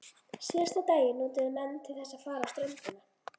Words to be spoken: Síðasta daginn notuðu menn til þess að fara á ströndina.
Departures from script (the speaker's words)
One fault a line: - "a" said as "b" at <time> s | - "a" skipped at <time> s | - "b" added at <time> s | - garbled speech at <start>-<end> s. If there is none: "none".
none